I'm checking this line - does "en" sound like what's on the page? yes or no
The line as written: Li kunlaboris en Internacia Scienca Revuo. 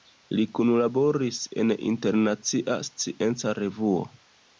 yes